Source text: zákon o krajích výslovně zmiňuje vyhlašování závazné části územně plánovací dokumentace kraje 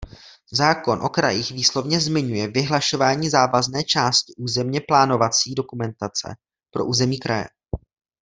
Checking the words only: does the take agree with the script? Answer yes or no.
no